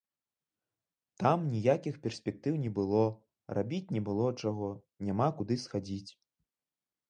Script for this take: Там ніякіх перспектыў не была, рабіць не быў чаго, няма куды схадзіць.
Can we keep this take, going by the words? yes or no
no